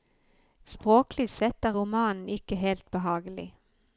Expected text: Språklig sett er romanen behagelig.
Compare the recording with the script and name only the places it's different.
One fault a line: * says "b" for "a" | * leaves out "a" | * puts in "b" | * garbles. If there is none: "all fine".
* puts in "ikke helt"